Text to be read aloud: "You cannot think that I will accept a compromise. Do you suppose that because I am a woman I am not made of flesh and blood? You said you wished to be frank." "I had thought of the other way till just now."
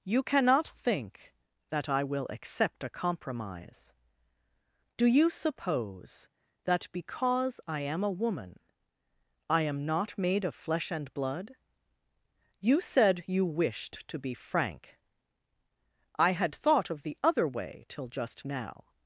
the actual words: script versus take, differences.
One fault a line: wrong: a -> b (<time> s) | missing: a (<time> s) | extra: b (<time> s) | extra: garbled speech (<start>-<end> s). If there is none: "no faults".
no faults